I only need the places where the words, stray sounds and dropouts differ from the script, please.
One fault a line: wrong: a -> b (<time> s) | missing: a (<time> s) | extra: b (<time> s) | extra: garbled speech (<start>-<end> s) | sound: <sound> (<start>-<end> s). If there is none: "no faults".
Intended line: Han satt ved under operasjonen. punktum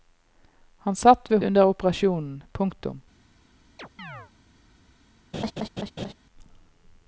sound: chirp (3.8-4.3 s)
sound: laugh (5.3-6.1 s)